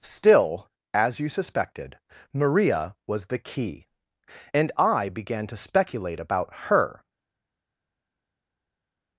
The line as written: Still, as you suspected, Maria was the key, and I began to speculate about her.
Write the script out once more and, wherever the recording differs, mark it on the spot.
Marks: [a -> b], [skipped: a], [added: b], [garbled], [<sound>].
Still, as you suspected, Maria was the key, and I began to speculate about her.